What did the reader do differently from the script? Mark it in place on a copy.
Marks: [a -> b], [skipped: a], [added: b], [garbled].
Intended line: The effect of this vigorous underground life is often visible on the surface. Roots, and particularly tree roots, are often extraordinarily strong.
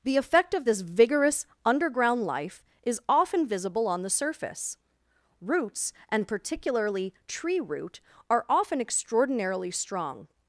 The effect of this vigorous underground life is often visible on the surface. Roots, and particularly tree [roots, -> root] are often extraordinarily strong.